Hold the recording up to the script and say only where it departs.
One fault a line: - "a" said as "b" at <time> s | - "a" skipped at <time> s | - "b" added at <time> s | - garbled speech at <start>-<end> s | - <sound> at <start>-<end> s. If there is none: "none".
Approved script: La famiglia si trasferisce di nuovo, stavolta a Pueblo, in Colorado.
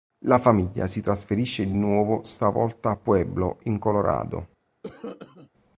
- cough at 4.8-5.5 s